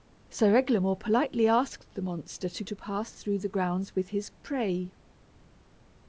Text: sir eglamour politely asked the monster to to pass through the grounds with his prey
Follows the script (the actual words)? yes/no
yes